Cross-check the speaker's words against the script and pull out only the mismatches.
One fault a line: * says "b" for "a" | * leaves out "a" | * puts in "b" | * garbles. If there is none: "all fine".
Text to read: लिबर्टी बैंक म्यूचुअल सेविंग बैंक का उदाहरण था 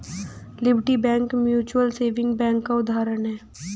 * says "है" for "था"